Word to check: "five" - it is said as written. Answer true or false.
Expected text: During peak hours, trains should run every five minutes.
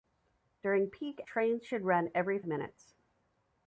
false